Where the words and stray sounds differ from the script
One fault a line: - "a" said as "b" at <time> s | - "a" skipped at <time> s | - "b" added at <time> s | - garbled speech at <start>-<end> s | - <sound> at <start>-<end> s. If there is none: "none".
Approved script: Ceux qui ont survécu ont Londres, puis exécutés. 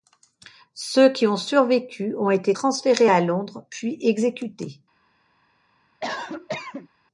- "été transférés à" added at 2.3 s
- cough at 6.0-6.9 s